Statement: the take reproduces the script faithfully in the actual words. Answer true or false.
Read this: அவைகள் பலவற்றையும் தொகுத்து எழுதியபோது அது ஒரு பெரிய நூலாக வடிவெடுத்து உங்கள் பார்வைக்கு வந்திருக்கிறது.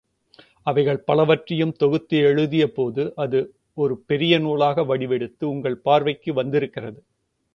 true